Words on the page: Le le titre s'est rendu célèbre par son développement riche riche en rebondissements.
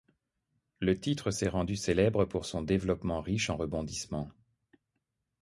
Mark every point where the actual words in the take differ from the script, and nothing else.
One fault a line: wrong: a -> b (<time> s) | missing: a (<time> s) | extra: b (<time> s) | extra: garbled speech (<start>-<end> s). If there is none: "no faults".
missing: le (1.0 s)
wrong: par -> pour (2.2 s)
missing: riche (3.5 s)